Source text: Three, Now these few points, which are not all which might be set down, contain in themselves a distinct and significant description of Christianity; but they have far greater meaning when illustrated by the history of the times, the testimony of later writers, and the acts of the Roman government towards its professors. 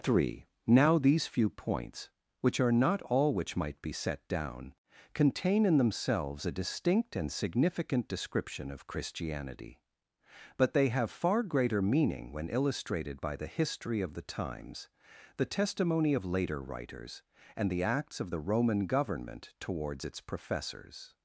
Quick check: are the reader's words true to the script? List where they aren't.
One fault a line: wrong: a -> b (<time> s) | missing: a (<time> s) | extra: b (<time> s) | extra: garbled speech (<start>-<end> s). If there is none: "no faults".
no faults